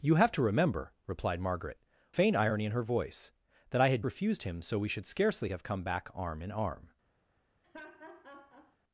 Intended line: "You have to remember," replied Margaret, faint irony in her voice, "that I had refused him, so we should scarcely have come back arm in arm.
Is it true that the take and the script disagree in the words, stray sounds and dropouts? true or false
true